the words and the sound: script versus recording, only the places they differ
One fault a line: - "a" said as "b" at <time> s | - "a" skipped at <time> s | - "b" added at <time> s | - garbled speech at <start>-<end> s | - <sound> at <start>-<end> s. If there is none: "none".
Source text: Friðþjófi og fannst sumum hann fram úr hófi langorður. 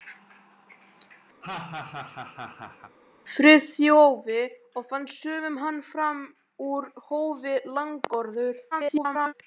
- laugh at 1.4-3.0 s
- garbled speech at 8.7-9.3 s